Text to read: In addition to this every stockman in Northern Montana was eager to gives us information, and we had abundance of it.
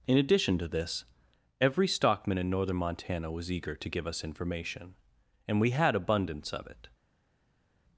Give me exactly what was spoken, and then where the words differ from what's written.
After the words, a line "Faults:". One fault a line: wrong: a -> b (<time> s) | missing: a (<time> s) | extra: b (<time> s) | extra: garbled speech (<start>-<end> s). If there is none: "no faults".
In addition to this every stockman in Northern Montana was eager to give us information, and we had abundance of it.
Faults:
wrong: gives -> give (3.9 s)